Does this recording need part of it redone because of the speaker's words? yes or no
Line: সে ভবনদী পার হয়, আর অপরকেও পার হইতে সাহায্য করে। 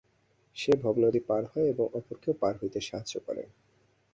yes